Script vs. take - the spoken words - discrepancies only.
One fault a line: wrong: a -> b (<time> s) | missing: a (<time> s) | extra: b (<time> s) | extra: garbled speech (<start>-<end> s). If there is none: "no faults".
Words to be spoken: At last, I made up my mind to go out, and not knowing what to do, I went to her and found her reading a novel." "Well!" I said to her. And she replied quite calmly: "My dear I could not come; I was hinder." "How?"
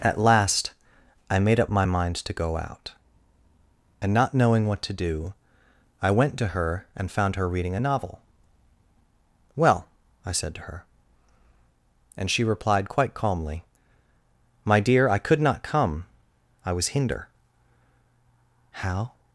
no faults